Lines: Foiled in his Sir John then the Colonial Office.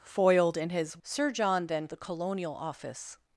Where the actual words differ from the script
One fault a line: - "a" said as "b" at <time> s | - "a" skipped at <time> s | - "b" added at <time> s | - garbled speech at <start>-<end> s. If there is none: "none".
none